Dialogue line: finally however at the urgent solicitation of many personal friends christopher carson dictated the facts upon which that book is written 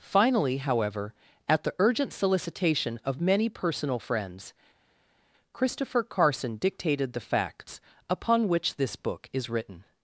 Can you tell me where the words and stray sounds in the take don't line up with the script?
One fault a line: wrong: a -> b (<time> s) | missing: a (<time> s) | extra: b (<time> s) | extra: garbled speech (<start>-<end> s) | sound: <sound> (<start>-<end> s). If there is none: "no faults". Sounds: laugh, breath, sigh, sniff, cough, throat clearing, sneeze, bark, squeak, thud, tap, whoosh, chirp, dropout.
wrong: that -> this (8.8 s)